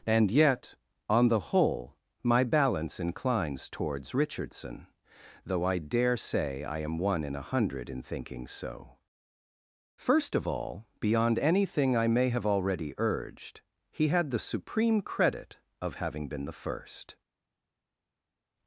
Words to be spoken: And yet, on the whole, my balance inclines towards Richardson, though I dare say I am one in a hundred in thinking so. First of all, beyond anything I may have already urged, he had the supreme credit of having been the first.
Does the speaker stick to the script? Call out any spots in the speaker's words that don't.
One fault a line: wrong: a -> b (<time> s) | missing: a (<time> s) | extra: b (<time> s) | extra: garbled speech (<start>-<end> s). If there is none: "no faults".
no faults